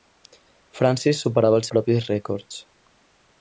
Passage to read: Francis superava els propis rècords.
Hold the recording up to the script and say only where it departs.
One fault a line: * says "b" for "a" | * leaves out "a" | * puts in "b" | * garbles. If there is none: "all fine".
all fine